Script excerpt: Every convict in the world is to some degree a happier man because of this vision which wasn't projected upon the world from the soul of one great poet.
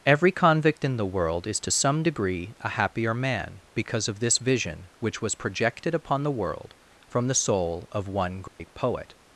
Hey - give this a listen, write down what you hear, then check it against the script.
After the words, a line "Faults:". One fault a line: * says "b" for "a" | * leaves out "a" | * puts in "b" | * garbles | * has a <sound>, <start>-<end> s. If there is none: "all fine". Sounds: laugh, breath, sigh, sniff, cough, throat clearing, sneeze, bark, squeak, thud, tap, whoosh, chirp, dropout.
Every convict in the world is to some degree a happier man because of this vision which was projected upon the world from the soul of one great poet.
Faults:
* says "was" for "wasn't"
* has a dropout, 8.5-8.6 s